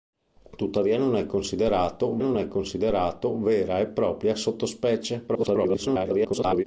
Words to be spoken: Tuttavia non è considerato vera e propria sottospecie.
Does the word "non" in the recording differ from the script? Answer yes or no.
no